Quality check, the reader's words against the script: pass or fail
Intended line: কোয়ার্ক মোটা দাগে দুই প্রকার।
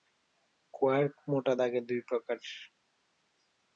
pass